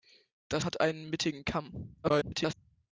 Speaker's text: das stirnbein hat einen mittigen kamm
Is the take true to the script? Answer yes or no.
no